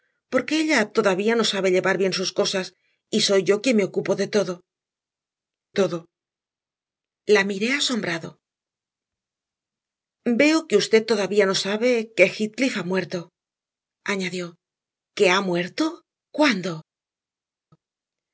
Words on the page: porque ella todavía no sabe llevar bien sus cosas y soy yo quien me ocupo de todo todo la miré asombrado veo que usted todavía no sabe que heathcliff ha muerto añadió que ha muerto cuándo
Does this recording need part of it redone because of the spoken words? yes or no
no